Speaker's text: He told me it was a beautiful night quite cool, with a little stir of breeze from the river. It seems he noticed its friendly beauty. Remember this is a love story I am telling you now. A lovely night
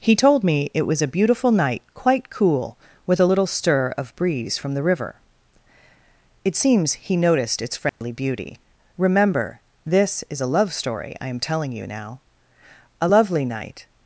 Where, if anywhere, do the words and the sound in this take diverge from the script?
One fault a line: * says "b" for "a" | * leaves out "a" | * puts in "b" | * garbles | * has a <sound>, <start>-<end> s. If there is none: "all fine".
* has a dropout, 7.9-8.0 s